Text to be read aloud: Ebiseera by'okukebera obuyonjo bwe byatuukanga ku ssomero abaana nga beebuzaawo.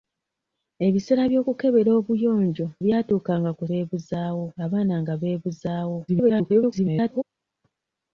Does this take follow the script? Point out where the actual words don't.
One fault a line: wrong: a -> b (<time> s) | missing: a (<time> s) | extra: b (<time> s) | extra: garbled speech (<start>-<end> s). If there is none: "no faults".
missing: bwe (2.7 s)
wrong: ssomero -> beebuzaawo (3.7 s)
extra: garbled speech (6.1-7.2 s)